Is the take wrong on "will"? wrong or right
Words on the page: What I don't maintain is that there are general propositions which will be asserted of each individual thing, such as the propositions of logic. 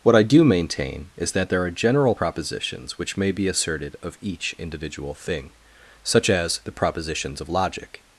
wrong